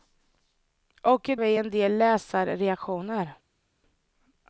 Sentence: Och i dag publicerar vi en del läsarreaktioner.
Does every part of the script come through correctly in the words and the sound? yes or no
no